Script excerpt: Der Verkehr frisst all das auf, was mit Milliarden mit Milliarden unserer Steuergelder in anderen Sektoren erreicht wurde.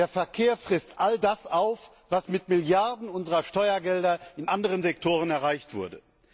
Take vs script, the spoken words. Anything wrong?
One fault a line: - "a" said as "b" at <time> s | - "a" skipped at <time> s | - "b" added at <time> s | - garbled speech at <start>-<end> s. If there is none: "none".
- "mit Milliarden" skipped at 3.1 s